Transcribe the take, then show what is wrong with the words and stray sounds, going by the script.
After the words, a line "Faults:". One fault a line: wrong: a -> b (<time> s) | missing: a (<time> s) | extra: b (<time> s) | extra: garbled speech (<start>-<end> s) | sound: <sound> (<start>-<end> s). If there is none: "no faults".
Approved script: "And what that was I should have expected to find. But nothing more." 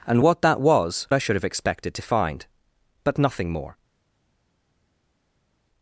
"And what that was I should have expected to find. But nothing more."
Faults:
no faults